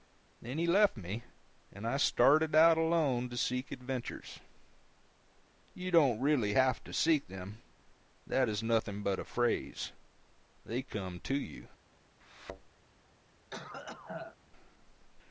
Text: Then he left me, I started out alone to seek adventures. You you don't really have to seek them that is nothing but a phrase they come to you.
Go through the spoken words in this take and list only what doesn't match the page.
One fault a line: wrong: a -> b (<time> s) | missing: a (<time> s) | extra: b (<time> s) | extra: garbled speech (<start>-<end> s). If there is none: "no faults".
extra: and (1.7 s)
missing: you (5.9 s)